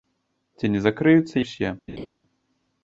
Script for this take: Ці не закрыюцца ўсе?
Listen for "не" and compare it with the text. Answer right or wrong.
right